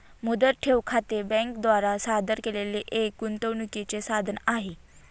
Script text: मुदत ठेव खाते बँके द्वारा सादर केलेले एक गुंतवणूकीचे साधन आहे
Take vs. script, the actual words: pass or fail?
pass